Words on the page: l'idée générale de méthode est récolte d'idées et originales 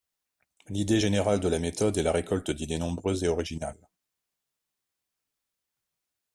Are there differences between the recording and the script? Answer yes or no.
yes